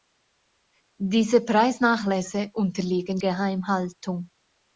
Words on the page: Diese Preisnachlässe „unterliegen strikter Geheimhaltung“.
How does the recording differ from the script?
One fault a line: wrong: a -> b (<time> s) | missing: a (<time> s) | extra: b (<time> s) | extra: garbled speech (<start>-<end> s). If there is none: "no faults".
missing: strikter (3.2 s)